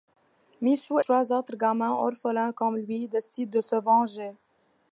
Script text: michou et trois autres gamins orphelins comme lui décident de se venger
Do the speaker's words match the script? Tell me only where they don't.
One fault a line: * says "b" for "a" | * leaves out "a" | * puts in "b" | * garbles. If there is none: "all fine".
* leaves out "et"